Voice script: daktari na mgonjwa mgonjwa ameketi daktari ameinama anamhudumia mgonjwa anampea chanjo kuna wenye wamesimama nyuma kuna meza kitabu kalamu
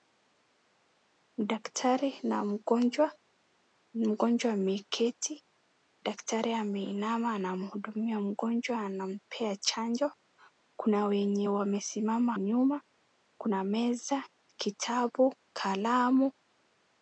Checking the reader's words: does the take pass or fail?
pass